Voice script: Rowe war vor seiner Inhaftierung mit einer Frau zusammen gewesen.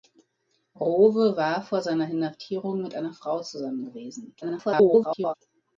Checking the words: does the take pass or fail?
fail